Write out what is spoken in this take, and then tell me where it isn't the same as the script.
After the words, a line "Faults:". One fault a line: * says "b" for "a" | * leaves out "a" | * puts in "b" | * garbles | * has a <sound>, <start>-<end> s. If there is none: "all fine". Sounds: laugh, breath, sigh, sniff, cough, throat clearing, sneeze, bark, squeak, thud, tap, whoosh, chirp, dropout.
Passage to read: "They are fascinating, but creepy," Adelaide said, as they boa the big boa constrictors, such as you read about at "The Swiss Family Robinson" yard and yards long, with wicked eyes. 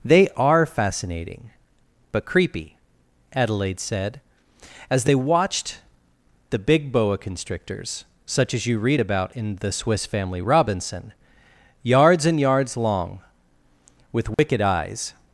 "They are fascinating, but creepy," Adelaide said, as they watched the big boa constrictors, such as you read about in "The Swiss Family Robinson" yards and yards long, with wicked eyes.
Faults:
* says "watched" for "boa"
* says "in" for "at"
* says "yards" for "yard"
* has a dropout, 14.3-14.4 s